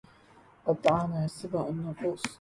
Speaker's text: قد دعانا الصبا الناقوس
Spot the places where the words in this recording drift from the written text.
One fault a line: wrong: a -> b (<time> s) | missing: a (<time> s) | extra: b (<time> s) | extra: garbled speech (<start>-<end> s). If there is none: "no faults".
no faults